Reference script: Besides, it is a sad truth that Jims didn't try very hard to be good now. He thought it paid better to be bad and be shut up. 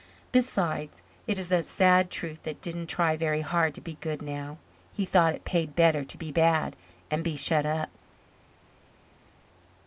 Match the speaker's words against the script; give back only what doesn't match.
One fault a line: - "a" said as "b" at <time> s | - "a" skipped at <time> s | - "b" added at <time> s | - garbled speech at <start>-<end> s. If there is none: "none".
- "Jims" skipped at 2.6 s